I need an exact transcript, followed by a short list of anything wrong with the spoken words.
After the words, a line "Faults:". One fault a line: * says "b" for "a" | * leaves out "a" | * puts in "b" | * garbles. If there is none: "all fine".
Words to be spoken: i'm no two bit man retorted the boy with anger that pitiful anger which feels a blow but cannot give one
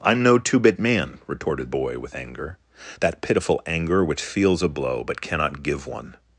i'm no two bit man retorted boy with anger that pitiful anger which feels a blow but cannot give one
Faults:
* leaves out "the"